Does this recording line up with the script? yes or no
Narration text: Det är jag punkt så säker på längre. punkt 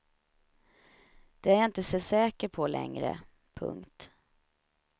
no